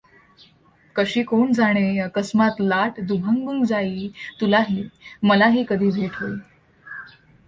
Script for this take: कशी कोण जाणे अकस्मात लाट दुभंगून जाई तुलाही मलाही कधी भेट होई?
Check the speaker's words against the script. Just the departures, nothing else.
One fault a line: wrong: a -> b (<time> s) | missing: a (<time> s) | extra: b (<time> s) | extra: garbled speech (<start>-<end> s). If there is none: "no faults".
no faults